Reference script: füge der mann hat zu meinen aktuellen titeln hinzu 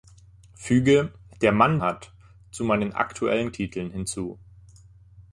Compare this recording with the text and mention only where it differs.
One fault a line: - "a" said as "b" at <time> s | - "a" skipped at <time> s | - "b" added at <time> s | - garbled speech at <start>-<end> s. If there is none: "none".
none